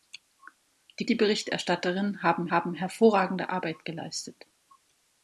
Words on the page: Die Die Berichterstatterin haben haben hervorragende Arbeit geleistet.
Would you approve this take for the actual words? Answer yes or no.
yes